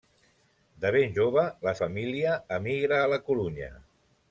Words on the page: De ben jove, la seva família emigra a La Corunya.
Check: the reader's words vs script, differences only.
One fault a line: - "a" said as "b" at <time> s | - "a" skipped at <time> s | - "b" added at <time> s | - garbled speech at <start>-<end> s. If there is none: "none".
- "seva" skipped at 1.7 s